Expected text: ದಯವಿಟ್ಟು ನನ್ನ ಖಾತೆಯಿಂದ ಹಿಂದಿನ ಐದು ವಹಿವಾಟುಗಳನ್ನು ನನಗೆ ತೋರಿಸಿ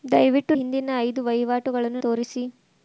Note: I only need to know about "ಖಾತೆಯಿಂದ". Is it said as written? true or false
false